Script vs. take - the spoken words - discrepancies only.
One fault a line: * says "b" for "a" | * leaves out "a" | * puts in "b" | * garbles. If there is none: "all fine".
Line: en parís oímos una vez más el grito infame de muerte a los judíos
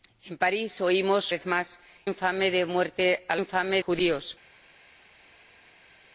* leaves out "una"
* leaves out "el grito"
* says "infame" for "los"